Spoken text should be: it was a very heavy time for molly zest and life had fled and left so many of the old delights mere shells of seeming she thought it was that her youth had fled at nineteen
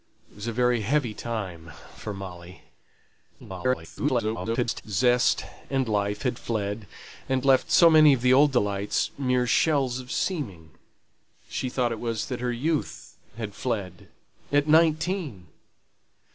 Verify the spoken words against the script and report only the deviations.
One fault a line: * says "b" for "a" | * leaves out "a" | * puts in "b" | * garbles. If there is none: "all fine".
* garbles